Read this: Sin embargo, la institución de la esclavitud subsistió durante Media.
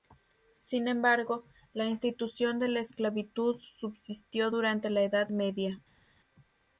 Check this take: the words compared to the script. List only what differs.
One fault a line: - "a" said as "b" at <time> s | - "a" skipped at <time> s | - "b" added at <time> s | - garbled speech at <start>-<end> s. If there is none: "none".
- "la Edad" added at 4.9 s